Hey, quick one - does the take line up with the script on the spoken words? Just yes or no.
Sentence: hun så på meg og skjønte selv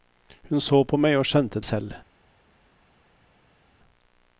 yes